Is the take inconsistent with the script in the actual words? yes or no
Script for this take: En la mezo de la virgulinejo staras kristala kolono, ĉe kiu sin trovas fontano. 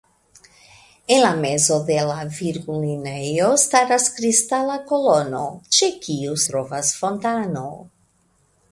yes